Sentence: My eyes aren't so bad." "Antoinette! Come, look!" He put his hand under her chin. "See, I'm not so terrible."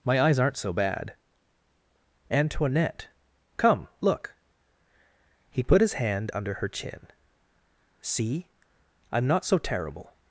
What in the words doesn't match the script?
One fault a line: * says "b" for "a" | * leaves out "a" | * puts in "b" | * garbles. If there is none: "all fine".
all fine